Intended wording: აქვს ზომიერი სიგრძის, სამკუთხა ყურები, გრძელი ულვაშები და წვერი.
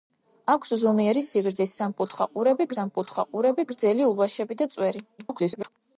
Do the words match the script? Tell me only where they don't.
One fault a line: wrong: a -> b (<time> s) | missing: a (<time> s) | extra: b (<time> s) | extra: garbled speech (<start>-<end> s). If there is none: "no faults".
extra: სამკუთხა ყურები (2.8 s)
extra: garbled speech (5.2-5.7 s)